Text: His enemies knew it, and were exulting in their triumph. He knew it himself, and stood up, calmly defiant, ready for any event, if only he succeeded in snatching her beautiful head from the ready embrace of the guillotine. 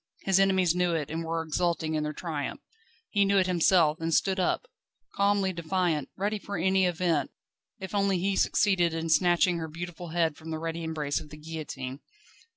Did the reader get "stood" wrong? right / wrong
right